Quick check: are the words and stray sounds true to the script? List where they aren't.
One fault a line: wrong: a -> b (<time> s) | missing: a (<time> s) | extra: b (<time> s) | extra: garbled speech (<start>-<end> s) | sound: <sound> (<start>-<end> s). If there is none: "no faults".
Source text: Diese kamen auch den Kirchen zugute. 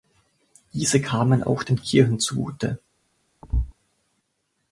sound: thud (3.4-3.7 s)